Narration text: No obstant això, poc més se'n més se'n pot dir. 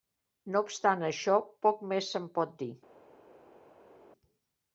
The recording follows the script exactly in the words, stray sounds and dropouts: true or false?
false